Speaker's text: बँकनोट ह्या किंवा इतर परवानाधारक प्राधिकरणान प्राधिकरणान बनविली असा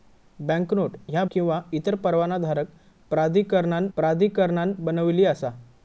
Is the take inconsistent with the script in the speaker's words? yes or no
no